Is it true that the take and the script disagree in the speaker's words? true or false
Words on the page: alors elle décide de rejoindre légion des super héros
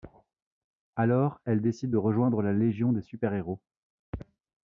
true